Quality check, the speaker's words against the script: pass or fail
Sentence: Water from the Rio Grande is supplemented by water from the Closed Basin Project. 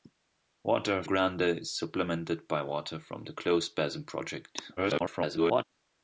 fail